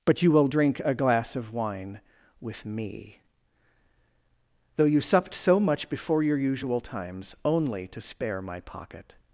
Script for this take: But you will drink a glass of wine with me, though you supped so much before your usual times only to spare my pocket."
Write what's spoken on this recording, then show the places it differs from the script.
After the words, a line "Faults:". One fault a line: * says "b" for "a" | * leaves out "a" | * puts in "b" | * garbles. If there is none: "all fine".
But you will drink a glass of wine with me, though you supped so much before your usual times only to spare my pocket."
Faults:
all fine